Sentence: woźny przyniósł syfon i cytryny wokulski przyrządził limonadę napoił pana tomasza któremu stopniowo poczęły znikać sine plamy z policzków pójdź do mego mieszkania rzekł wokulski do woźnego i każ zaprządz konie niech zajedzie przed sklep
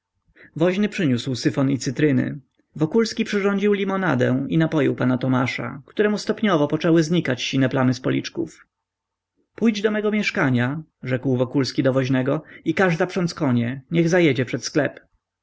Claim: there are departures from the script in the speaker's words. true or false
true